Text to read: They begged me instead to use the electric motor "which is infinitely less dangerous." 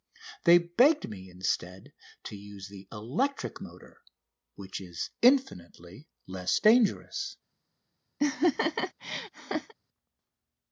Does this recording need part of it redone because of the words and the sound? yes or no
yes